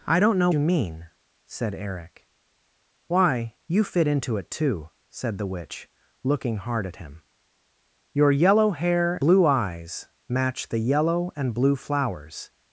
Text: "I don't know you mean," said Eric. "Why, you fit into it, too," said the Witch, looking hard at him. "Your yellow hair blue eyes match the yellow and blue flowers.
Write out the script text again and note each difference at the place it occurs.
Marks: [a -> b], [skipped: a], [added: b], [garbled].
"I don't know you mean," said Eric. "Why, you fit into it, too," said the Witch, looking hard at him. "Your yellow hair blue eyes match the yellow and blue flowers.